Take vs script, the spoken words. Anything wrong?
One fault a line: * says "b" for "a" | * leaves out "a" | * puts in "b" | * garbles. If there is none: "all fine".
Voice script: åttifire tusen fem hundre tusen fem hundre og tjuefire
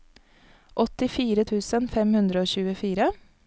* leaves out "tusen fem hundre"